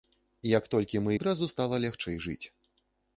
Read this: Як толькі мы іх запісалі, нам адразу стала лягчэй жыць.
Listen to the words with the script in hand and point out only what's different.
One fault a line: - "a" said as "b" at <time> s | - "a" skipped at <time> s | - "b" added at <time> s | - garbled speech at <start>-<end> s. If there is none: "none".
- "іх запісалі нам" skipped at 1.1 s